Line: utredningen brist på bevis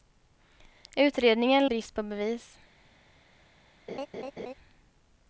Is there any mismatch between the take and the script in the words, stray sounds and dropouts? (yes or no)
yes